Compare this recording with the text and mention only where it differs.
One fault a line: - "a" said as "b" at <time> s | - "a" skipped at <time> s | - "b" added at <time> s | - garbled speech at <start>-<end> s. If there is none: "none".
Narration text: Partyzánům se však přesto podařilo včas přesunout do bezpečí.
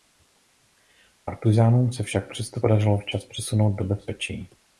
none